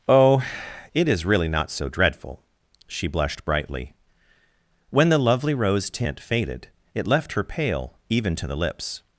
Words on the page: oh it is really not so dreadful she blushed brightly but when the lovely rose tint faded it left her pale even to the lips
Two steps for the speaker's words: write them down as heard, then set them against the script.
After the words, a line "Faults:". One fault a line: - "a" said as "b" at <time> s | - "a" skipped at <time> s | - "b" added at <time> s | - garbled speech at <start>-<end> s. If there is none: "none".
oh it is really not so dreadful she blushed brightly when the lovely rose tint faded it left her pale even to the lips
Faults:
- "but" skipped at 3.9 s